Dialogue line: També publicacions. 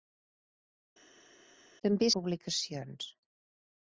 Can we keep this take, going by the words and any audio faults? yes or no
yes